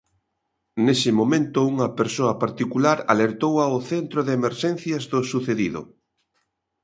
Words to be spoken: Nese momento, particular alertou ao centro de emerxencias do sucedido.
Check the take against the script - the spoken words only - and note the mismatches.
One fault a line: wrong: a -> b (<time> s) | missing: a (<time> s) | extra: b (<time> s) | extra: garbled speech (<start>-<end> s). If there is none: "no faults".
extra: unha persoa (1.7 s)